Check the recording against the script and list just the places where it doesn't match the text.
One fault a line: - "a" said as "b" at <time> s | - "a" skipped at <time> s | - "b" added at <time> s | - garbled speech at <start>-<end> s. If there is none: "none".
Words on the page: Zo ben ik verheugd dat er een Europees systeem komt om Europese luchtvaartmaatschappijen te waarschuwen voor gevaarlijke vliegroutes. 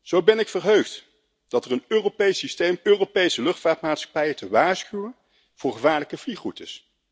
- "komt om" skipped at 2.8 s